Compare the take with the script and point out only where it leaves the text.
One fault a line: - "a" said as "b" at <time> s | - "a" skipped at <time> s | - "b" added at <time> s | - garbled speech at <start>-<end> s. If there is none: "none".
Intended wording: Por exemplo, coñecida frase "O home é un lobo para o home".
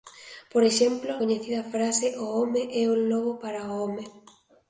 none